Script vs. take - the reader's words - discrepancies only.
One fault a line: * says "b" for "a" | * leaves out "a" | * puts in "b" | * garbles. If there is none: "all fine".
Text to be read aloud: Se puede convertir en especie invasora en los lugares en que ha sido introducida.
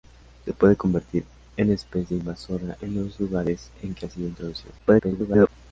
* garbles